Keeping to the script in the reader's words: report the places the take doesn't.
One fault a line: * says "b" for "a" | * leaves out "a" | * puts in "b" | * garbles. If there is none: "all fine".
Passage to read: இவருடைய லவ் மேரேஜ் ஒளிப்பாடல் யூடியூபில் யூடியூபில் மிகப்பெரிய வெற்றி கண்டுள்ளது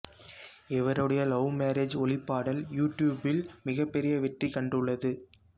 * leaves out "யூடியூபில்"